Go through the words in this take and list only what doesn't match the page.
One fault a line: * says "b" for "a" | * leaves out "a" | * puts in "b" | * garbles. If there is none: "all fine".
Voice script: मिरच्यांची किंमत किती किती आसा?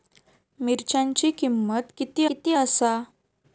all fine